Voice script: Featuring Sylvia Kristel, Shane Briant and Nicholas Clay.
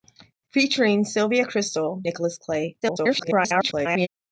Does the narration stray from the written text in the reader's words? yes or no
yes